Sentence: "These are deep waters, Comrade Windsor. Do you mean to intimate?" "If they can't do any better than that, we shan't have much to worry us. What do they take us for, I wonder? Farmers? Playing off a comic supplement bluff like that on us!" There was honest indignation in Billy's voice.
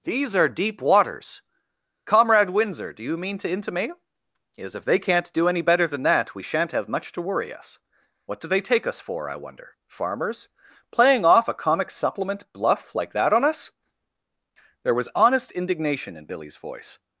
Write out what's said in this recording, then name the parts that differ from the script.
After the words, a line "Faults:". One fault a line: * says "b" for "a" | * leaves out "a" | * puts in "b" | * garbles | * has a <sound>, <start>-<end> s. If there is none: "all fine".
"These are deep waters, Comrade Windsor. Do you mean to intimate?" is "If they can't do any better than that, we shan't have much to worry us. What do they take us for, I wonder? Farmers? Playing off a comic supplement bluff like that on us!" There was honest indignation in Billy's voice.
Faults:
* puts in "is"